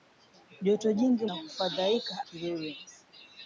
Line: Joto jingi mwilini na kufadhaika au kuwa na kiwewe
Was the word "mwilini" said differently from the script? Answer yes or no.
yes